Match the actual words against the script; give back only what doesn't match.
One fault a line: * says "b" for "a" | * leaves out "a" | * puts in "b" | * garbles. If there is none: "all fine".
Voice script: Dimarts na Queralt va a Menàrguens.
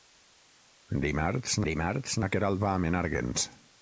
* puts in "dimarts"